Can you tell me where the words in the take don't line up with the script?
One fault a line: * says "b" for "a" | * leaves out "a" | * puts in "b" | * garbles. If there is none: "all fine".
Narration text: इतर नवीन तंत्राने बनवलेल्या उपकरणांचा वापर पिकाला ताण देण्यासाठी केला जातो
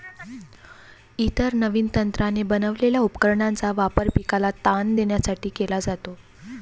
all fine